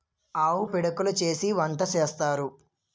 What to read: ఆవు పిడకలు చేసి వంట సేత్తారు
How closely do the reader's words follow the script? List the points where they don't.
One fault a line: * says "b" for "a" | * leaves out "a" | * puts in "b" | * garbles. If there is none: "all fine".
all fine